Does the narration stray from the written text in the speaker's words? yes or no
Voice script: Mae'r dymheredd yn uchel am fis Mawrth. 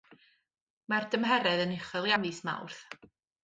no